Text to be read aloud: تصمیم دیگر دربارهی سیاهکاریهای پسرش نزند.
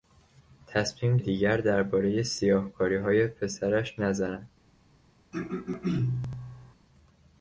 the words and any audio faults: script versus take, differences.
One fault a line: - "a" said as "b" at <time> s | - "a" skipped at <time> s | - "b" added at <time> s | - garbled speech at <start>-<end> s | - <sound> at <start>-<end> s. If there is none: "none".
- throat clearing at 5.3-6.7 s